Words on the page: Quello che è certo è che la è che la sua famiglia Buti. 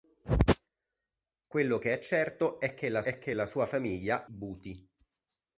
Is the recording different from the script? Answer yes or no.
no